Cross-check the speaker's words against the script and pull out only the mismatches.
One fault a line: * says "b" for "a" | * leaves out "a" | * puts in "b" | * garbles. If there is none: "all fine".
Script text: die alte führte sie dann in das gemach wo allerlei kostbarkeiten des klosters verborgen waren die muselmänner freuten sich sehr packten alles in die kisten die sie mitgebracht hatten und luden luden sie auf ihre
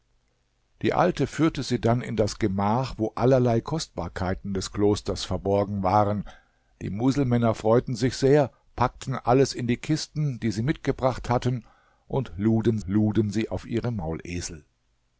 all fine